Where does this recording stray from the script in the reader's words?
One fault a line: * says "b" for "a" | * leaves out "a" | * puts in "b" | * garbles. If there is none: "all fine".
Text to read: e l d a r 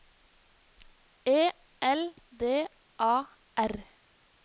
all fine